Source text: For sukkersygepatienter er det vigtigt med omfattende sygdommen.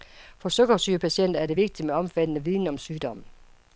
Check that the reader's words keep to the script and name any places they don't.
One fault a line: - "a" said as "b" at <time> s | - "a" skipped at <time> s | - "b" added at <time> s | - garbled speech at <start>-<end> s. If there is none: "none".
- "viden om" added at 2.4 s